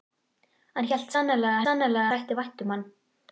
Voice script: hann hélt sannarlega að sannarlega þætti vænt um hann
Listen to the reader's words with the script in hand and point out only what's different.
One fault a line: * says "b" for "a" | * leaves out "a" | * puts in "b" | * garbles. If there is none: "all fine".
all fine